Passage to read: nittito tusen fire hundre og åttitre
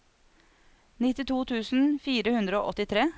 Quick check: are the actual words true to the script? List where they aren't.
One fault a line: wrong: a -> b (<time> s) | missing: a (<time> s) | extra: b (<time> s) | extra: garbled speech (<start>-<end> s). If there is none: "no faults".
no faults